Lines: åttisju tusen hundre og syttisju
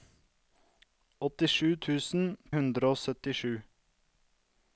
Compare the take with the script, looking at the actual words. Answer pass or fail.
pass